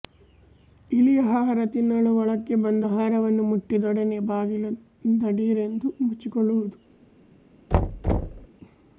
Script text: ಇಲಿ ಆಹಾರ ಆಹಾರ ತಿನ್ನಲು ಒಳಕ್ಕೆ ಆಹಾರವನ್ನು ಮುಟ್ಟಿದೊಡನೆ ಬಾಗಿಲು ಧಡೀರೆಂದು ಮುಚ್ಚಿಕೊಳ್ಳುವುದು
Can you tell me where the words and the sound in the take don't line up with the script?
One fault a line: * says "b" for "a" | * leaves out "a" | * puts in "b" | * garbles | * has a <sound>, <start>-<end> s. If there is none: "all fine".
* leaves out "ಆಹಾರ"
* puts in "ಬಂದು"
* has a thud, 7.7-8.5 s